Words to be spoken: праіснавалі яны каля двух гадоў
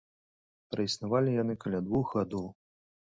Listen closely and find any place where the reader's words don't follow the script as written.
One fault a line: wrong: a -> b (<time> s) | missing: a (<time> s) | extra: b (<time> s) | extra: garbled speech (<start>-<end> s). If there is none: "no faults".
no faults